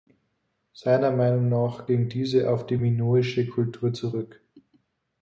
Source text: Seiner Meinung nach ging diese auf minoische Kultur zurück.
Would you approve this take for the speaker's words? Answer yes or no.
no